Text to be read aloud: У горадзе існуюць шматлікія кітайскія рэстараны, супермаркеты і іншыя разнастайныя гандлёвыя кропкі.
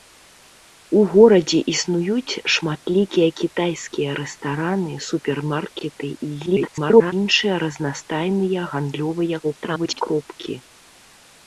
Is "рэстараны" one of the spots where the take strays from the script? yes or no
no